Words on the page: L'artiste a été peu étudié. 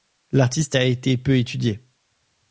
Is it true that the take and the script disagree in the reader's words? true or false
false